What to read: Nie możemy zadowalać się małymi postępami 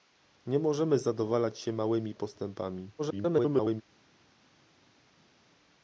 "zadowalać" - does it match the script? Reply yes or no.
yes